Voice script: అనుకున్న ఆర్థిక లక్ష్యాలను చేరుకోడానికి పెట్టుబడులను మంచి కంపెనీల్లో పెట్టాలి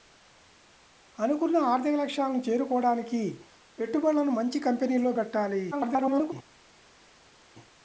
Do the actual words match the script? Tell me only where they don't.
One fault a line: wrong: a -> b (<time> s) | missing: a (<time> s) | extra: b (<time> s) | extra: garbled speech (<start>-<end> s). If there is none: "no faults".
extra: garbled speech (5.7-6.3 s)